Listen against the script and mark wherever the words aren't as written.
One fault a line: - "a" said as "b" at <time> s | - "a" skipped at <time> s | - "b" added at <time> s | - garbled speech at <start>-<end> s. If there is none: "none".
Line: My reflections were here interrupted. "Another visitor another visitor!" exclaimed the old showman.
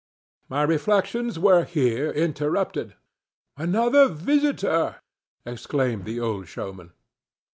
- "another visitor" skipped at 5.0 s